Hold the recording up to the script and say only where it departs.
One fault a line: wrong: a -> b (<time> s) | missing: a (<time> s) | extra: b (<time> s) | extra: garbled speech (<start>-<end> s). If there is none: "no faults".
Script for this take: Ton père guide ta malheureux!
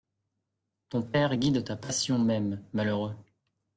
extra: passion même (1.8 s)